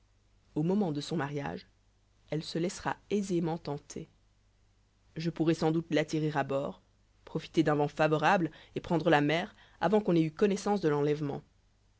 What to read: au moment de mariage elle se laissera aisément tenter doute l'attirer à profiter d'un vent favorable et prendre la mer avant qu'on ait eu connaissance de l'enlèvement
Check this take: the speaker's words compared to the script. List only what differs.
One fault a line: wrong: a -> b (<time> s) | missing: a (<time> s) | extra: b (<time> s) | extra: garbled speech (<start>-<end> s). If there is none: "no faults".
extra: son (1.0 s)
extra: je pourrai sans (5.2 s)
extra: bord (6.4 s)